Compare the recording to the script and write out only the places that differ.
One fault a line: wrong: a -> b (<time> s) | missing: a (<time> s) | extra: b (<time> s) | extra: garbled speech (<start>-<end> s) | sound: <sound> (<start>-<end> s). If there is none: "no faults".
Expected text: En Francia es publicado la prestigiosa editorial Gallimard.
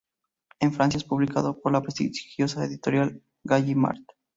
extra: por (1.6 s)